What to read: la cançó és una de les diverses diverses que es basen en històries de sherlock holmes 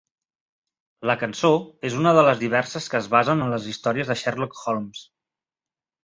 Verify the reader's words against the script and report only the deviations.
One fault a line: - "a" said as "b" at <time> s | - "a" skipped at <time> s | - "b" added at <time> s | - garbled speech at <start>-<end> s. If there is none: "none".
- "diverses" skipped at 2.9 s
- "les" added at 3.5 s